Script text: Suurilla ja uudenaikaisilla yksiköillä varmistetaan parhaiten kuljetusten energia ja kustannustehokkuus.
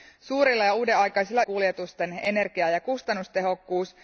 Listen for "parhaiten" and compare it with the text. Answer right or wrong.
wrong